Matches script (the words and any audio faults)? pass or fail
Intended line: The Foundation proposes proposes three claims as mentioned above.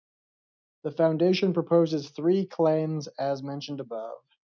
fail